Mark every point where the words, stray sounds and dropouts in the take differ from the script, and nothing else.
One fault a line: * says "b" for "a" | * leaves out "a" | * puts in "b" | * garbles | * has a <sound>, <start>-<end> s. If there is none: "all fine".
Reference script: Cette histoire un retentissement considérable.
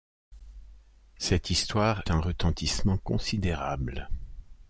all fine